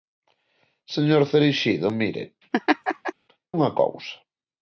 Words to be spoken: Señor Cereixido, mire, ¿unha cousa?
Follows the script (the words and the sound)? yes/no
no